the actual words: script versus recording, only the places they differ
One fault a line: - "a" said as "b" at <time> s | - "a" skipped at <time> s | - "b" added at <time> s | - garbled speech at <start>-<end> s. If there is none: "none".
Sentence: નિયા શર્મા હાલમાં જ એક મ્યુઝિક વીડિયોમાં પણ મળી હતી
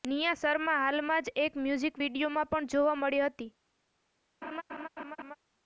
- "જોવા" added at 2.7 s